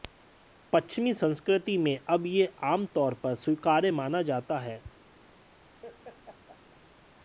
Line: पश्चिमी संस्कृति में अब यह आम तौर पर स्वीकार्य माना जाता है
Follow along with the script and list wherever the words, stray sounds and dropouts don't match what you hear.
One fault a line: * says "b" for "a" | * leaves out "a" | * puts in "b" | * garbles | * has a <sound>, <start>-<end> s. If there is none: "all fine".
* has a laugh, 5.8-6.8 s